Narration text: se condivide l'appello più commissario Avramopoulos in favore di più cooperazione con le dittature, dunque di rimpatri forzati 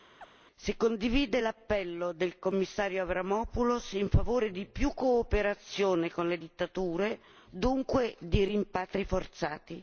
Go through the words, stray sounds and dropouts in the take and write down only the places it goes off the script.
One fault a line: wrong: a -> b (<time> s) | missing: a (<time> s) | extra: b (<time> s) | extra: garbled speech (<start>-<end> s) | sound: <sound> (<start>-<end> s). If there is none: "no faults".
sound: chirp (0.2-0.3 s)
wrong: più -> del (2.1 s)